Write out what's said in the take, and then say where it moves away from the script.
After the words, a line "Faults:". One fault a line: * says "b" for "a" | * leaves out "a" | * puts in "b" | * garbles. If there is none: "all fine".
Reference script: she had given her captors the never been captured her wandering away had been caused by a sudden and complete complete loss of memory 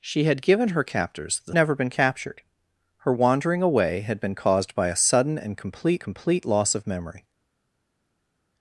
she had given her captors the never been captured her wandering away had been caused by a sudden and complete complete loss of memory
Faults:
all fine